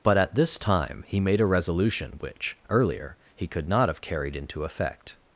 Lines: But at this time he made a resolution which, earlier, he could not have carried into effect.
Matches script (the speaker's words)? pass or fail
pass